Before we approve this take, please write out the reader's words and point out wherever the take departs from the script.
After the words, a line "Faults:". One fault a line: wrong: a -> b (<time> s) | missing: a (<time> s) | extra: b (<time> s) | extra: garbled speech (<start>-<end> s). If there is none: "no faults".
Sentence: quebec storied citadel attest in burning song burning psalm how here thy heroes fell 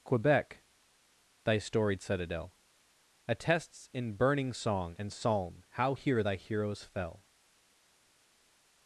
quebec thy storied citadel attests in burning song and psalm how here thy heroes fell
Faults:
extra: thy (1.4 s)
wrong: attest -> attests (3.3 s)
wrong: burning -> and (5.0 s)